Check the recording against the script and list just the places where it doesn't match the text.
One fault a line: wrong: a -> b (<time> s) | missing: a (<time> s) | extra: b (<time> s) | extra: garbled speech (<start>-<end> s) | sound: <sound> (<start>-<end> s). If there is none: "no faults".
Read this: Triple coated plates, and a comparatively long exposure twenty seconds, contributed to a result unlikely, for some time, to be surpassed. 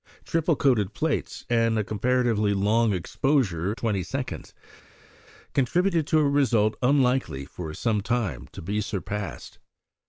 no faults